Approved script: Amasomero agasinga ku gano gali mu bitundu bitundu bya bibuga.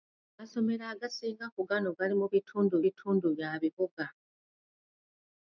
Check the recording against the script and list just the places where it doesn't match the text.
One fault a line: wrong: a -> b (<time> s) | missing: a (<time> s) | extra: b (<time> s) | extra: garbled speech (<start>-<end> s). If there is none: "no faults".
no faults